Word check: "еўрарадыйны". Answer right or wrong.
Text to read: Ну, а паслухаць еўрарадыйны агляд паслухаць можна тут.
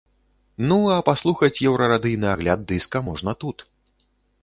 right